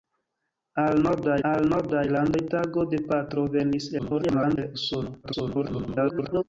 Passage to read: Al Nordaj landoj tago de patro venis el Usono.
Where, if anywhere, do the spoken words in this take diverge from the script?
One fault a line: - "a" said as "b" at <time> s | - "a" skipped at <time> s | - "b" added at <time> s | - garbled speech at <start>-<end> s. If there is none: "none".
- "al Nordaj" added at 1.5 s
- garbled speech at 4.0-4.6 s
- garbled speech at 5.2-6.4 s